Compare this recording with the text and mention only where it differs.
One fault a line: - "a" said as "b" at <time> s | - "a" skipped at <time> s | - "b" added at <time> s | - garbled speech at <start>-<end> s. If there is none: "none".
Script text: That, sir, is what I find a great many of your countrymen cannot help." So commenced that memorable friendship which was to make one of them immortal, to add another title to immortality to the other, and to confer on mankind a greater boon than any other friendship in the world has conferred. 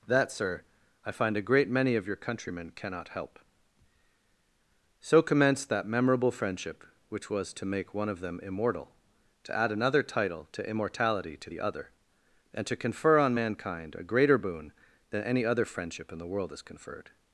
- "is what" skipped at 0.6 s